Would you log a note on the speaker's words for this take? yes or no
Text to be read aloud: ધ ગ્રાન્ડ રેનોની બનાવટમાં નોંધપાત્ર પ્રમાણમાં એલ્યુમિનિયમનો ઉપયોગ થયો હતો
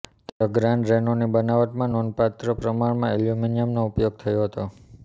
no